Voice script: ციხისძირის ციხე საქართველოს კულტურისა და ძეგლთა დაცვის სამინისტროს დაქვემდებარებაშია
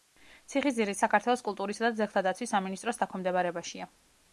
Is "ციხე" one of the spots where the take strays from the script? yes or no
yes